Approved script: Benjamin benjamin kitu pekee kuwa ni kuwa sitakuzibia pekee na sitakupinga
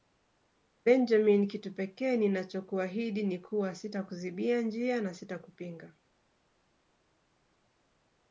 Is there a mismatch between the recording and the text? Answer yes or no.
yes